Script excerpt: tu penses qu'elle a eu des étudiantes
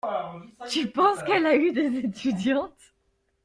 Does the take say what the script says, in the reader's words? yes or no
yes